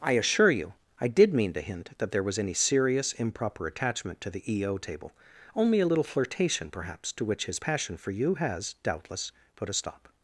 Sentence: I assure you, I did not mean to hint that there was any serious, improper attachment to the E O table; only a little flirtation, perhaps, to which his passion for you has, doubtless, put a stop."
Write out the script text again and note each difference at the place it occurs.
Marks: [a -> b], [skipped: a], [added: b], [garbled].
I assure you, I did [skipped: not] mean to hint that there was any serious, improper attachment to the E O table; only a little flirtation, perhaps, to which his passion for you has, doubtless, put a stop."